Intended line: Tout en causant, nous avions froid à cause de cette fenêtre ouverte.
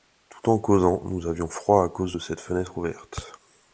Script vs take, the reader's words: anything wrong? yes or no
no